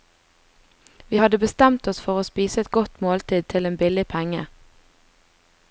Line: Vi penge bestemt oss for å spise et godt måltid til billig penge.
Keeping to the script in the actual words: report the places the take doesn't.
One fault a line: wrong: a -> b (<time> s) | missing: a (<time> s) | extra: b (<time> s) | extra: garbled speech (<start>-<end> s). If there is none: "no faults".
wrong: penge -> hadde (1.1 s)
extra: en (3.7 s)